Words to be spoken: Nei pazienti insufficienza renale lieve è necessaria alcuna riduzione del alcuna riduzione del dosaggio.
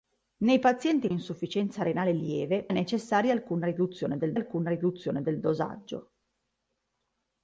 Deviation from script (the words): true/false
false